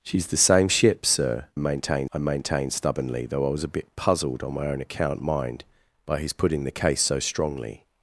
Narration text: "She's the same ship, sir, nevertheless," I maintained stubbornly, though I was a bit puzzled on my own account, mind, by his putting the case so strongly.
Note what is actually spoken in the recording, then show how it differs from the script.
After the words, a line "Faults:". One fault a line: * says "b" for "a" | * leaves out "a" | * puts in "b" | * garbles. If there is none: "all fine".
"She's the same ship, sir, maintained," I maintained stubbornly, though I was a bit puzzled on my own account, mind, by his putting the case so strongly.
Faults:
* says "maintained" for "nevertheless"